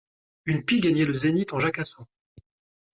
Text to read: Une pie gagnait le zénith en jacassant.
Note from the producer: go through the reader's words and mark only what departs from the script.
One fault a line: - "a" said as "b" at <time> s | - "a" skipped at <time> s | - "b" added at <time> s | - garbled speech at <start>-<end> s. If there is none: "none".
none